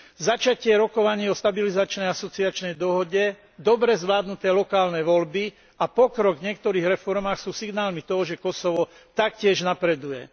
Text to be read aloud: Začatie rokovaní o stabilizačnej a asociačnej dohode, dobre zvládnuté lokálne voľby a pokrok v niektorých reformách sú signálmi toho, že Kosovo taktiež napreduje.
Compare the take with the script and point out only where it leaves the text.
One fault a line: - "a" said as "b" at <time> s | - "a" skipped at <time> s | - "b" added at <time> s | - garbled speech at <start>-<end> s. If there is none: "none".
none